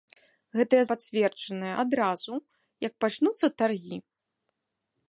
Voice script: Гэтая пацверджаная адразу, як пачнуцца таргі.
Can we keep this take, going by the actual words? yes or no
yes